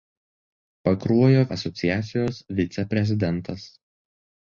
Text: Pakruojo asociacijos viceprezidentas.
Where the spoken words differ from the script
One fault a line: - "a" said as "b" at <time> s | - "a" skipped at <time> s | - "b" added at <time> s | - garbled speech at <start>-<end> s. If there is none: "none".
none